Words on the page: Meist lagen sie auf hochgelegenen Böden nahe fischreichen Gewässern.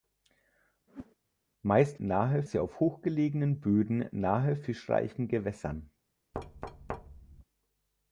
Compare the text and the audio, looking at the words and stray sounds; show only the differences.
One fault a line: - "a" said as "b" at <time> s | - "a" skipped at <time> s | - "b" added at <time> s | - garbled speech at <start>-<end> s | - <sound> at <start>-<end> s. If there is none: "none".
- whoosh at 0.9-1.2 s
- "lagen" said as "nahe" at 2.0 s
- thud at 6.3-7.4 s